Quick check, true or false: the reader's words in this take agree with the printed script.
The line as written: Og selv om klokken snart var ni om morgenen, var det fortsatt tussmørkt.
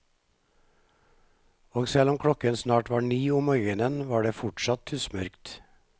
true